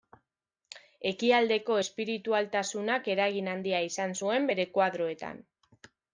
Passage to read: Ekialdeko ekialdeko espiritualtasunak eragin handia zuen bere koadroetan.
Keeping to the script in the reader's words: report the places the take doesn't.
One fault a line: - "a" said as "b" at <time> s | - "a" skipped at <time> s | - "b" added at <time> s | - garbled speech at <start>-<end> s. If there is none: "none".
- "ekialdeko" skipped at 1.8 s
- "izan" added at 3.9 s